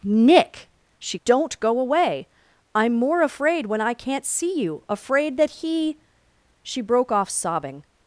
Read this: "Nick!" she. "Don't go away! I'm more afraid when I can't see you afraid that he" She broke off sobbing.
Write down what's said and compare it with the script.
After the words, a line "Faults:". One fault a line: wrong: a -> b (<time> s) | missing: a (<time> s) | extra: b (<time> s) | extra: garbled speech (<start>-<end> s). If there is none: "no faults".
"Nick!" she. "Don't go away! I'm more afraid when I can't see you afraid that he" She broke off sobbing.
Faults:
no faults